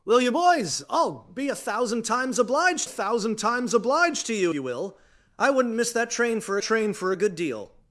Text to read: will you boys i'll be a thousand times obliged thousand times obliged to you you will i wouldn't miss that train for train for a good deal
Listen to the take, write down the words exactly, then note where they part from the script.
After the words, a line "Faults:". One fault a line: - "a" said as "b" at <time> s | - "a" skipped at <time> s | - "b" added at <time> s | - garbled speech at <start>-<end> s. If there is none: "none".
will you boys i'll be a thousand times obliged thousand times obliged to you you will i wouldn't miss that train for train for a good deal
Faults:
none